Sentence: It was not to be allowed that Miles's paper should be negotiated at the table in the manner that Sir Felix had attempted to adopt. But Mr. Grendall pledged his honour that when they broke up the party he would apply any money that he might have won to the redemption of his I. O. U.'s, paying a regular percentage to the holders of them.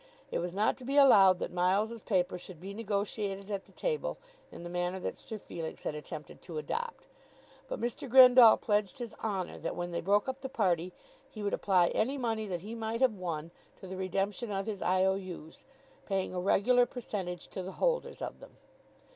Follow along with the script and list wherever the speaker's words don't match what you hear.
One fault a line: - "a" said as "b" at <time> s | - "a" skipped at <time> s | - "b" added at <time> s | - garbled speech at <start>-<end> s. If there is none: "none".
none